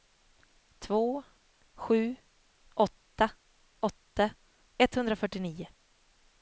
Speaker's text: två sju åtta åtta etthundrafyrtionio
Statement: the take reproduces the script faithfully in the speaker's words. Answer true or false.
true